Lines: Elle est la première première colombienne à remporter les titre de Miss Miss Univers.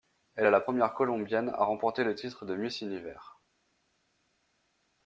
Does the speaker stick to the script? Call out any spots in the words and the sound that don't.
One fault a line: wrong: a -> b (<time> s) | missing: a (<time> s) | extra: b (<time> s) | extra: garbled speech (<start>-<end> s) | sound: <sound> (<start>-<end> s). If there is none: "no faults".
missing: première (0.9 s)
wrong: les -> le (2.0 s)
missing: Miss (2.8 s)